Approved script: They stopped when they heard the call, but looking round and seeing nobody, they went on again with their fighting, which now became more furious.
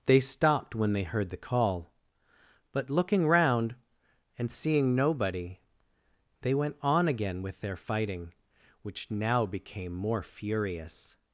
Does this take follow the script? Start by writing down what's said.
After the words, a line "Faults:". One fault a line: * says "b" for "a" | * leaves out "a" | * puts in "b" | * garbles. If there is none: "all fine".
They stopped when they heard the call, but looking round and seeing nobody, they went on again with their fighting, which now became more furious.
Faults:
all fine